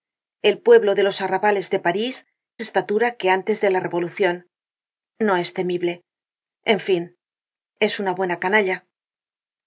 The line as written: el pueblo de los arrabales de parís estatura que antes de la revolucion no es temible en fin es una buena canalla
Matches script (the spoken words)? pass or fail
pass